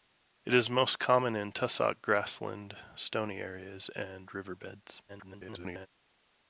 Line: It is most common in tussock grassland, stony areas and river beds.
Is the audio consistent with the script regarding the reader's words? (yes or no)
no